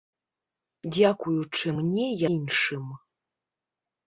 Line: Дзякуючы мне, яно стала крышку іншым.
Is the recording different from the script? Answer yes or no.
yes